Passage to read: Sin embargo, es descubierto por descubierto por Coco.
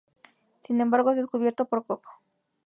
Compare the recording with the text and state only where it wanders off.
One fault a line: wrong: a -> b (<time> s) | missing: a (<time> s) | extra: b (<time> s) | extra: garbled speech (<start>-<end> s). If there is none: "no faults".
missing: descubierto por (1.9 s)